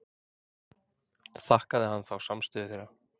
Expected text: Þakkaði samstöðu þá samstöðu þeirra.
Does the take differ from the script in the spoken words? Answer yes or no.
yes